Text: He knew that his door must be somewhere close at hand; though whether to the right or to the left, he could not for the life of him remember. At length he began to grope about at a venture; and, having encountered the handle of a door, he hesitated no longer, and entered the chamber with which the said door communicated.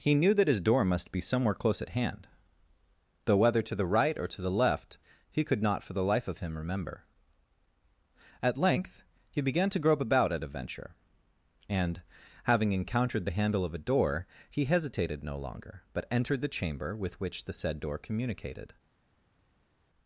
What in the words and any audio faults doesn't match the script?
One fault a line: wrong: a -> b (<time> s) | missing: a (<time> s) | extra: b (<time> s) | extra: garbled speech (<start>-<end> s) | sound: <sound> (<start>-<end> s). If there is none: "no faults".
wrong: and -> but (15.9 s)